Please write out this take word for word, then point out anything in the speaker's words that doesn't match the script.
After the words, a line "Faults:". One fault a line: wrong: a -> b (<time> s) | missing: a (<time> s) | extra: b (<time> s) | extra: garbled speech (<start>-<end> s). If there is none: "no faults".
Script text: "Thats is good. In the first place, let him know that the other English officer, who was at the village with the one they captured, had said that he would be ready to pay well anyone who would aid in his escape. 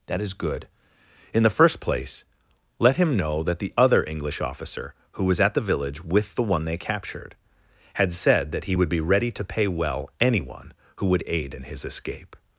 "That is good. In the first place, let him know that the other English officer, who was at the village with the one they captured, had said that he would be ready to pay well anyone who would aid in his escape.
Faults:
wrong: Thats -> That (0.1 s)